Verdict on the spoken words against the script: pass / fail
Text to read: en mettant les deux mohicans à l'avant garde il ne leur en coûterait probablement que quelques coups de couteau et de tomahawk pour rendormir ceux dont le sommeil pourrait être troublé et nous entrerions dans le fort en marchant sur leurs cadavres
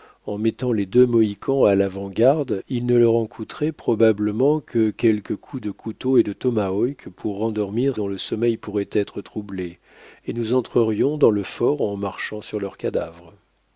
fail